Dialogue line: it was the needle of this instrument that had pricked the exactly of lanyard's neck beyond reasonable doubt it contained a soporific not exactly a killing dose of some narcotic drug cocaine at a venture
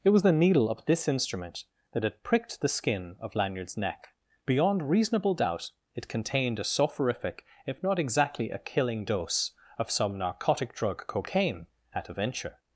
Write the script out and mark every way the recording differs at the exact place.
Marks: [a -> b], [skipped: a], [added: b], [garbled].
it was the needle of this instrument that had pricked the [exactly -> skin] of lanyard's neck beyond reasonable doubt it contained a soporific [added: if] not exactly a killing dose of some narcotic drug cocaine at a venture